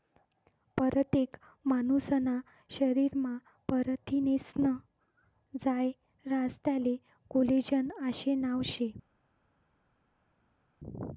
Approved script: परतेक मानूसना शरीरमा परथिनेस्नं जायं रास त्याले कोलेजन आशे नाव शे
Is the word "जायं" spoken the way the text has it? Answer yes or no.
yes